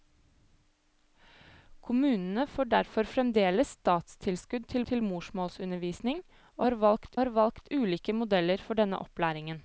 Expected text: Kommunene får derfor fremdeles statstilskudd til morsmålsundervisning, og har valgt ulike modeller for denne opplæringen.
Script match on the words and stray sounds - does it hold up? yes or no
no